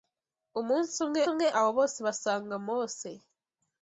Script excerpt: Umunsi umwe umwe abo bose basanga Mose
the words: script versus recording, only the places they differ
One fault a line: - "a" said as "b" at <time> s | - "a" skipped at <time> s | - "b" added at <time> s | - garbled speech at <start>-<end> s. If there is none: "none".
none